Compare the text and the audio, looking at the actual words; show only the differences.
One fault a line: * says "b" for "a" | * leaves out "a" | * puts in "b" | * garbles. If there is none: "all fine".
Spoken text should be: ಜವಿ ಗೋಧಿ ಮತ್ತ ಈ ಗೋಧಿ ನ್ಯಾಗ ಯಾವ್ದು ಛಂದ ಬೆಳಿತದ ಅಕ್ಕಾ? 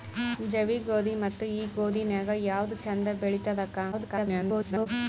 * garbles